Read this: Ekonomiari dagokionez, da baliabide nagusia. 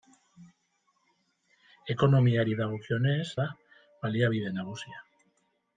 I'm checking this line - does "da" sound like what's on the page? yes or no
yes